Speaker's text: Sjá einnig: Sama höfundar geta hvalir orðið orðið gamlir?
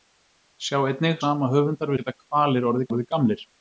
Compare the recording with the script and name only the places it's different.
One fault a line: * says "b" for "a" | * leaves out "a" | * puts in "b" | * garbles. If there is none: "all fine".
all fine